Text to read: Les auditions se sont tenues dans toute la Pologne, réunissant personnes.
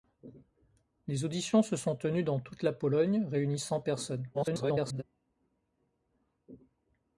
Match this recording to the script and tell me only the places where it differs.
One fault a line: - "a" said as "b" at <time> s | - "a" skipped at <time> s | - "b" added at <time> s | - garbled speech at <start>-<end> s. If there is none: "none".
- garbled speech at 4.3-5.0 s